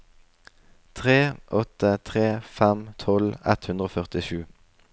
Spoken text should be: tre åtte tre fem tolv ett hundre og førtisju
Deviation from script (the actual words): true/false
false